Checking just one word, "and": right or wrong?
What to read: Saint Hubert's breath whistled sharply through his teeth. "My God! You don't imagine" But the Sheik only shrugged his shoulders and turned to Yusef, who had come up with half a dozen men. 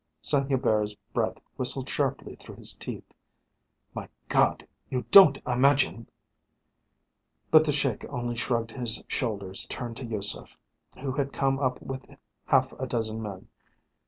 wrong